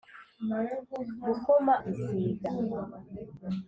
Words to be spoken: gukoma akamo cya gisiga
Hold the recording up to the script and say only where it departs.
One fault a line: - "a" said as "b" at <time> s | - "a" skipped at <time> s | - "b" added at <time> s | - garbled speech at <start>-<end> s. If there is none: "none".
- "akamo cya" skipped at 1.7 s